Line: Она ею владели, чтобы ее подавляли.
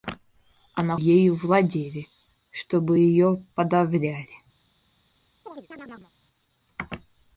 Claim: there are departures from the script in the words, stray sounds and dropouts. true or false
true